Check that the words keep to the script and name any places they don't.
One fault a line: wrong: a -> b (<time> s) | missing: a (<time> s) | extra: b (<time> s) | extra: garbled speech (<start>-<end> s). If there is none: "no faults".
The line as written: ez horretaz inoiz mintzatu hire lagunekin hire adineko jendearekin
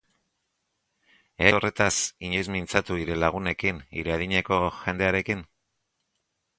no faults